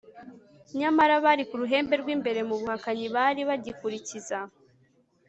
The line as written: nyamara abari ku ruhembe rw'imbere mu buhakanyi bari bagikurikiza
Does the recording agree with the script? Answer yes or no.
yes